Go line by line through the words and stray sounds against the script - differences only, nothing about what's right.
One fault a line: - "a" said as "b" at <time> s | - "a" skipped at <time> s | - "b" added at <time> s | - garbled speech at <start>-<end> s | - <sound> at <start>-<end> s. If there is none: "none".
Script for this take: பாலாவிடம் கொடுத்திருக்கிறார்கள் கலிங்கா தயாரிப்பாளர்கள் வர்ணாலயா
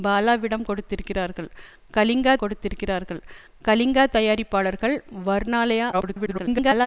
- "கொடுத்திருக்கிறார்கள் கலிங்கா" added at 2.4 s
- garbled speech at 5.9-6.9 s